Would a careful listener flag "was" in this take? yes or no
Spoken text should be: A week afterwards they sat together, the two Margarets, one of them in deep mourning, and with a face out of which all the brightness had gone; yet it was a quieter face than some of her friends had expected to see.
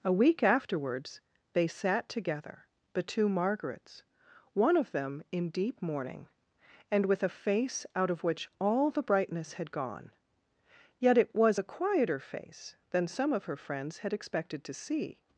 no